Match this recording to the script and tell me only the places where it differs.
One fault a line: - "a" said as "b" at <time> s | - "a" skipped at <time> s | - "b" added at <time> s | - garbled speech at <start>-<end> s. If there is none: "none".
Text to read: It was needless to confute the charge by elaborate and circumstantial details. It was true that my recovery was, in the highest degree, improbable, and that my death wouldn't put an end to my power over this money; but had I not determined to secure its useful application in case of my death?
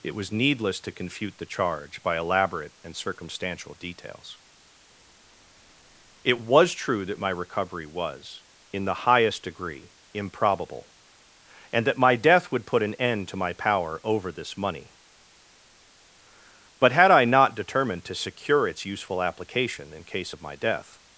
- "wouldn't" said as "would" at 12.5 s